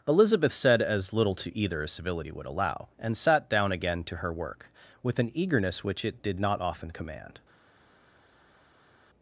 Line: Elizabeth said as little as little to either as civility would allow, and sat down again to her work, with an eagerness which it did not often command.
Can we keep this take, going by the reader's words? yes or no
no